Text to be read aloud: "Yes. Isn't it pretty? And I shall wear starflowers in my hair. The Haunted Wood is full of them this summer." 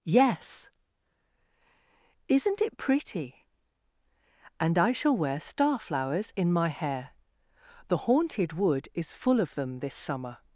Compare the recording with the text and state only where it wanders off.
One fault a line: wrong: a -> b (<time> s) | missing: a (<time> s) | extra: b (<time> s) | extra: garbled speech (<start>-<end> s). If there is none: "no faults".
no faults